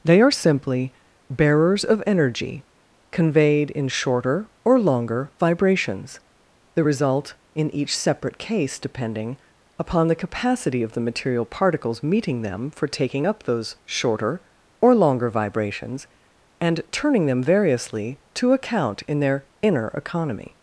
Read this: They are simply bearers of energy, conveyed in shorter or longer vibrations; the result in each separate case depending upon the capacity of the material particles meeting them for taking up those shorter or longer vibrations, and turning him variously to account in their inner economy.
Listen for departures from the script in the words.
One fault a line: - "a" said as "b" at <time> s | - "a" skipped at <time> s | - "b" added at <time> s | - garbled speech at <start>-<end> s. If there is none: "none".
- "him" said as "them" at 17.3 s